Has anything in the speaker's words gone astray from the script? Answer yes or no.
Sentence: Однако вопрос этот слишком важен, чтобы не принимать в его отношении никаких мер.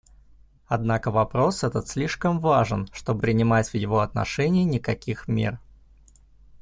yes